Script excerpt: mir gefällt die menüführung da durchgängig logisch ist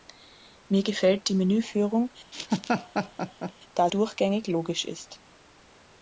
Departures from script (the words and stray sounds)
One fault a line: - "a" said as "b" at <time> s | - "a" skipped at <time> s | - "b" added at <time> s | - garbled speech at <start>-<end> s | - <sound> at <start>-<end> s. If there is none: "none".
- laugh at 2.3-3.5 s